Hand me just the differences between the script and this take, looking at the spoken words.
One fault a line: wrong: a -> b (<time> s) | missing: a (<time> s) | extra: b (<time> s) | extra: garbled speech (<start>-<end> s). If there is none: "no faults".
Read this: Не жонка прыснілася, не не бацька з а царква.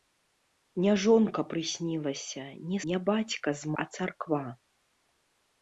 no faults